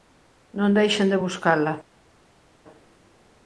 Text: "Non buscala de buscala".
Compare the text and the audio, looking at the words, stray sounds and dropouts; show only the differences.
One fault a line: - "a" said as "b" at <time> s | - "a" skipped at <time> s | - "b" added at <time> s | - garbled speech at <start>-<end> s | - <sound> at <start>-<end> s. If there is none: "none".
- "buscala" said as "deixen" at 0.8 s